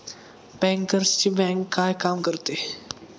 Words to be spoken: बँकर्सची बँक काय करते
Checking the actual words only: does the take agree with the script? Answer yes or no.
no